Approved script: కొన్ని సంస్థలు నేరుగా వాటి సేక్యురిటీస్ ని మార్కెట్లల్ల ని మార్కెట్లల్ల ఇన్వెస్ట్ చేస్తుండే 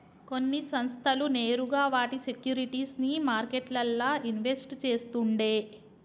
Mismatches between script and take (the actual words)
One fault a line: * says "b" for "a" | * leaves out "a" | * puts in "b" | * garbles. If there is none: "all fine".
* leaves out "ని మార్కెట్లల్ల"